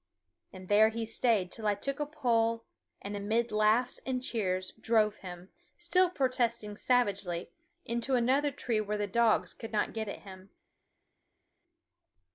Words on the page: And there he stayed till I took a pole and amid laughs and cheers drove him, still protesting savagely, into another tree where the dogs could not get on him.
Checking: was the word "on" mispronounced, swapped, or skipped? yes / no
yes